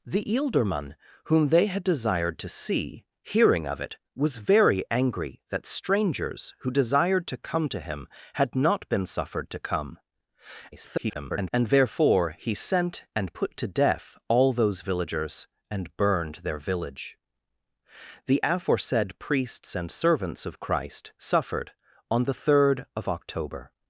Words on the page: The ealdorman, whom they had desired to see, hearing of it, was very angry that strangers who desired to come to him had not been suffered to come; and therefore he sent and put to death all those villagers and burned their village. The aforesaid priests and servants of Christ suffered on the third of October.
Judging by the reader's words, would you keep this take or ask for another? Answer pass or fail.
fail